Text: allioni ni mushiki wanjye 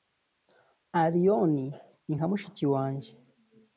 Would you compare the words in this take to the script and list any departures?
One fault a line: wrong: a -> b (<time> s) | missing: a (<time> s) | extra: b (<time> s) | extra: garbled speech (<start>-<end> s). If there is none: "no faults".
extra: nka (2.2 s)